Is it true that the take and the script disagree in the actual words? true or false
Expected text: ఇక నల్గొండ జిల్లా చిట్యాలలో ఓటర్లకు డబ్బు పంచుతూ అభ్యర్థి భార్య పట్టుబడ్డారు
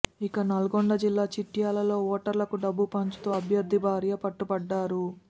false